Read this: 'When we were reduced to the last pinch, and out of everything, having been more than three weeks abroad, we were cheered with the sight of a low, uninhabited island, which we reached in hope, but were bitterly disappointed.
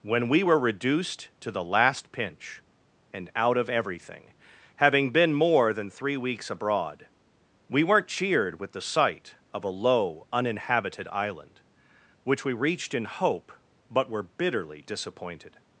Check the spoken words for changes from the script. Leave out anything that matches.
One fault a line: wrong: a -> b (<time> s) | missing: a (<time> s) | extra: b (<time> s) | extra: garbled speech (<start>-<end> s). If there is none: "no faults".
wrong: were -> weren't (7.8 s)